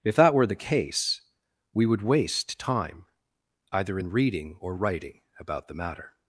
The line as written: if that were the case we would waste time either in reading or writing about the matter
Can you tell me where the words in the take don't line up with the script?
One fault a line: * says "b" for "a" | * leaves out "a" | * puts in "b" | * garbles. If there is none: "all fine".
all fine